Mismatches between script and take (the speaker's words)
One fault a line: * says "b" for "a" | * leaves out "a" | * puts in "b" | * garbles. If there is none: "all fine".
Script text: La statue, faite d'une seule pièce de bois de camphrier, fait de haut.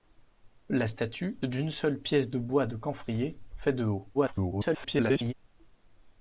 * leaves out "faite"
* garbles